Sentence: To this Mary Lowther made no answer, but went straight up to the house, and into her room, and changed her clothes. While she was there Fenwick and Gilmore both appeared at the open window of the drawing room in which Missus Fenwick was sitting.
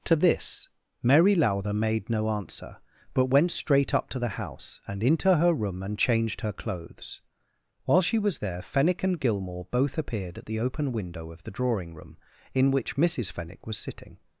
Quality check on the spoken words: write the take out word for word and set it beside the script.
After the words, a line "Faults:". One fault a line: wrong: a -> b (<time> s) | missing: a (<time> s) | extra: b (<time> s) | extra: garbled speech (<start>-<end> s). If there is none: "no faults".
To this Mary Lowther made no answer, but went straight up to the house, and into her room, and changed her clothes. While she was there Fenwick and Gilmore both appeared at the open window of the drawing room in which Missus Fenwick was sitting.
Faults:
no faults